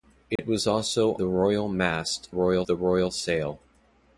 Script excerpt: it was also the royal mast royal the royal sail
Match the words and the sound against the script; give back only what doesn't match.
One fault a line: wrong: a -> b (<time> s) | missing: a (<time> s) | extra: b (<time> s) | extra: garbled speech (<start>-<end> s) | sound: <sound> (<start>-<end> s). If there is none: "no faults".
sound: dropout (0.4-0.4 s)